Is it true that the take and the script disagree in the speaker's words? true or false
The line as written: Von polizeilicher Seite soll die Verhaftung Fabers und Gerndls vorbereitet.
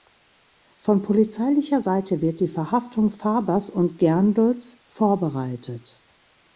true